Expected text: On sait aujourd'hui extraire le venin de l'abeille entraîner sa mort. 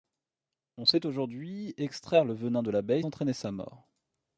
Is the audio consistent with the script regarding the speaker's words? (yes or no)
yes